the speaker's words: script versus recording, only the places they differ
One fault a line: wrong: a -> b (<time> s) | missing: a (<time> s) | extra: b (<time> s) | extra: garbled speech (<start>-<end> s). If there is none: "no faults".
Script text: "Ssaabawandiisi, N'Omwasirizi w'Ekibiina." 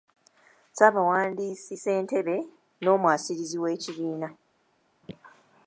extra: Ssentebe (1.8 s)